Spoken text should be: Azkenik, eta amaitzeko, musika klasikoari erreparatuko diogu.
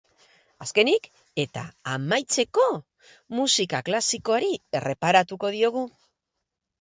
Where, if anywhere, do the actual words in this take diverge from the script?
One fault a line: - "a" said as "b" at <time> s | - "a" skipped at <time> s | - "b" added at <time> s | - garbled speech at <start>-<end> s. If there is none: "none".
none